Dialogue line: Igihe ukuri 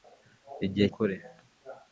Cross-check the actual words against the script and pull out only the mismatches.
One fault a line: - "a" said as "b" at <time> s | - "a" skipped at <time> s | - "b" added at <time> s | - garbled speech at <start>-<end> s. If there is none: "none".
none